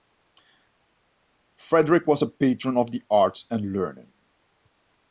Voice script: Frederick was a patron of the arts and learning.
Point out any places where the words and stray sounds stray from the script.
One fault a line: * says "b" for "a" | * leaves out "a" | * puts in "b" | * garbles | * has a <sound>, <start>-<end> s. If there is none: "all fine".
all fine